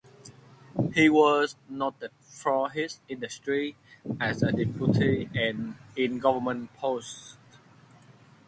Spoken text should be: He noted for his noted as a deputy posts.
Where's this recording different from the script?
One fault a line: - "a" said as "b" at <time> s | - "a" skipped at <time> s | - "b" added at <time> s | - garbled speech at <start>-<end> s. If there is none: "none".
- "was" added at 1.1 s
- "noted" said as "industry" at 3.1 s
- "and in government" added at 5.4 s